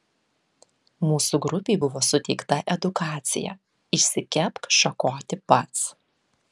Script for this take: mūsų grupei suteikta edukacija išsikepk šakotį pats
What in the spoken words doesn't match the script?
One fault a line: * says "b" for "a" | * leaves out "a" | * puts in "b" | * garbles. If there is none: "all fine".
* puts in "buvo"